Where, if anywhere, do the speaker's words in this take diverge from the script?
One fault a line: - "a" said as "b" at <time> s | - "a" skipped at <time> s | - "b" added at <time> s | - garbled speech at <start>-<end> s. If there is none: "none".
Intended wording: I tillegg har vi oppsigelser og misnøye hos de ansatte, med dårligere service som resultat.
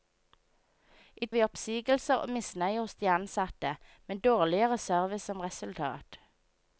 - "tillegg har" skipped at 1.3 s